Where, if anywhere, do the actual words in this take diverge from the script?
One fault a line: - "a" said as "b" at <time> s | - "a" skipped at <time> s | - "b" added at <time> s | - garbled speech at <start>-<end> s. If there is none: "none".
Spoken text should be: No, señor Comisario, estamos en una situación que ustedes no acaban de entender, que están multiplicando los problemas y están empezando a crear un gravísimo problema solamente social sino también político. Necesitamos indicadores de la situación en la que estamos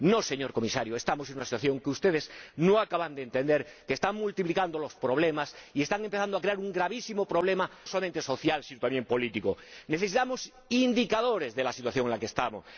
none